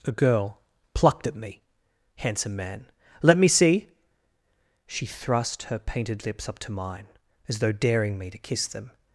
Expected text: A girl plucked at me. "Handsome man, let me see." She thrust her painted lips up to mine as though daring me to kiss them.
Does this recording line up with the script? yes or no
yes